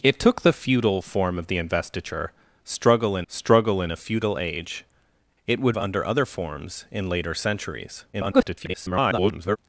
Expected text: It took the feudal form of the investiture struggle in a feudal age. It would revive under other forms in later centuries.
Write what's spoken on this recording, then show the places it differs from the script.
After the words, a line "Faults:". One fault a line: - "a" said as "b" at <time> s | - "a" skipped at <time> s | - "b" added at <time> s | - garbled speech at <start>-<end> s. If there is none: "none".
It took the feudal form of the investiture struggle in struggle in a feudal age. It would under other forms in later centuries. [garbled]
Faults:
- "struggle in" added at 3.3 s
- "revive" skipped at 5.8 s
- garbled speech at 8.1-9.6 s